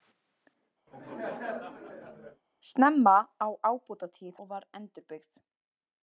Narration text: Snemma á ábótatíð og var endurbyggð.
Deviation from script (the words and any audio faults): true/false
true